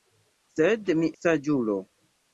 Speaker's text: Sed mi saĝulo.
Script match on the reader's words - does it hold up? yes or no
yes